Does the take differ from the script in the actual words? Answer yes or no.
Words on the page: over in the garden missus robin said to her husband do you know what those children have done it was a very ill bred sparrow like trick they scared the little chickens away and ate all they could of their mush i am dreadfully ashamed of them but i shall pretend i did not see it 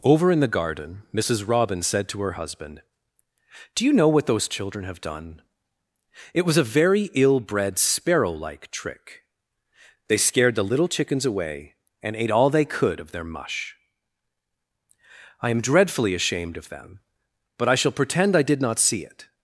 no